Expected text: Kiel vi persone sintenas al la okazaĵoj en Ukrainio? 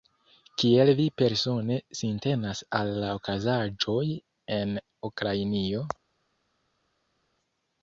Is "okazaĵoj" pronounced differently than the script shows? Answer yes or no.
no